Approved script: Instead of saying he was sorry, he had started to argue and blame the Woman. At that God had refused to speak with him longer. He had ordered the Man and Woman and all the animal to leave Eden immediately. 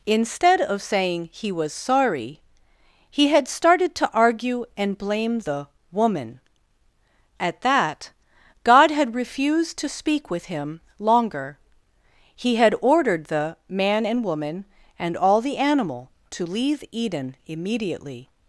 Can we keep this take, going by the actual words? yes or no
yes